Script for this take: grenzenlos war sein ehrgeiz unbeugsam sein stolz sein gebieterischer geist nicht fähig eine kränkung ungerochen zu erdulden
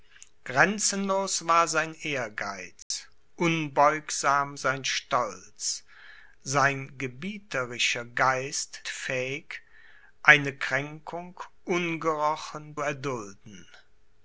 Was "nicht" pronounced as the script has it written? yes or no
no